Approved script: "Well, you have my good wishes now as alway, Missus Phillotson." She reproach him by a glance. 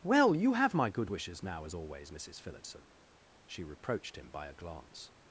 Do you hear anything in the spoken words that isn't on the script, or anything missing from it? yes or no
yes